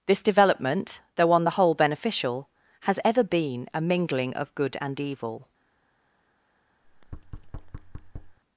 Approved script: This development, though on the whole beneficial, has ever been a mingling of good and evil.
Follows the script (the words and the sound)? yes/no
no